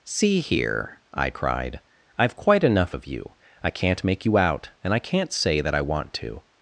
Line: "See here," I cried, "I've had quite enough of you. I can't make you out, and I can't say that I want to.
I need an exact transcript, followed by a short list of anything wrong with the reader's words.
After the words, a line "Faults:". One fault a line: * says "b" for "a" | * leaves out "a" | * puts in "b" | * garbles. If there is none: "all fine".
"See here," I cried, "I've quite enough of you. I can't make you out, and I can't say that I want to.
Faults:
* leaves out "had"